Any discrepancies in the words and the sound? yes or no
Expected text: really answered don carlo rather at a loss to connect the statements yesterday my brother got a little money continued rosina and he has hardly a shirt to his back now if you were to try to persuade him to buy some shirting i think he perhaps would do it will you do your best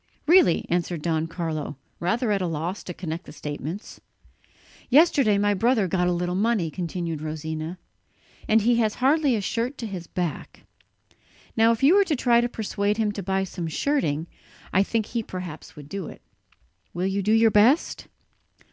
no